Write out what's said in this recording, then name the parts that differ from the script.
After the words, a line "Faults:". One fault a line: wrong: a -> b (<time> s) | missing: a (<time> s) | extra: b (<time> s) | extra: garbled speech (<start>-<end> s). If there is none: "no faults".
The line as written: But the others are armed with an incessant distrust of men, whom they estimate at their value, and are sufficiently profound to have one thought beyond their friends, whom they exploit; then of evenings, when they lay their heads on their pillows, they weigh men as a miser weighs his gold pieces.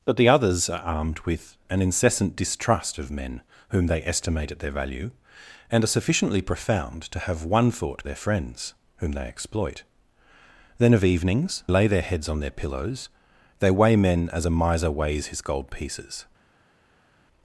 But the others are armed with an incessant distrust of men, whom they estimate at their value, and are sufficiently profound to have one thought their friends, whom they exploit; then of evenings, lay their heads on their pillows, they weigh men as a miser weighs his gold pieces.
Faults:
missing: beyond (8.1 s)
missing: when they (11.6 s)